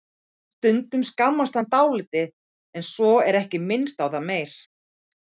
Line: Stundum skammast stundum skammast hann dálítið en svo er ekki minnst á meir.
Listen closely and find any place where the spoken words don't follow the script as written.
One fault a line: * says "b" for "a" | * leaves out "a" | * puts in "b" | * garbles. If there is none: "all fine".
* leaves out "stundum skammast"
* puts in "það"